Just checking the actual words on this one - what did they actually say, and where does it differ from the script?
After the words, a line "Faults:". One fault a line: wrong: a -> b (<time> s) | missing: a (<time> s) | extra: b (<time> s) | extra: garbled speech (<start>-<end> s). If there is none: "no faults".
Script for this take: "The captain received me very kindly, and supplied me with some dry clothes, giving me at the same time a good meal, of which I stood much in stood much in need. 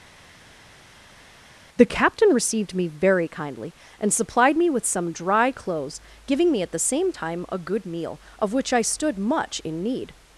"The captain received me very kindly, and supplied me with some dry clothes, giving me at the same time a good meal, of which I stood much in need.
Faults:
missing: stood much in (9.8 s)